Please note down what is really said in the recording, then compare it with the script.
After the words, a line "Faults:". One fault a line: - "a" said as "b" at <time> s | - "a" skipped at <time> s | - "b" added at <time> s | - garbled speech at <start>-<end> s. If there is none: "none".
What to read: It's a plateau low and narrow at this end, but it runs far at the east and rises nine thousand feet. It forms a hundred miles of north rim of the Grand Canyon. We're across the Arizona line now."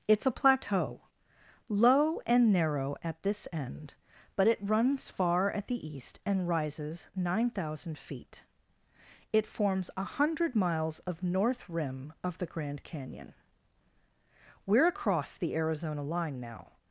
It's a plateau low and narrow at this end, but it runs far at the east and rises nine thousand feet. It forms a hundred miles of north rim of the Grand Canyon. We're across the Arizona line now."
Faults:
none